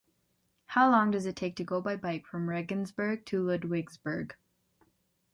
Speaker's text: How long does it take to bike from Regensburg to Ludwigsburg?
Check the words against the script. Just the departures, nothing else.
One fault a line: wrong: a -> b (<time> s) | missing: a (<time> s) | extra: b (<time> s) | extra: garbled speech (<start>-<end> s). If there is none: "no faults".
extra: go by (1.6 s)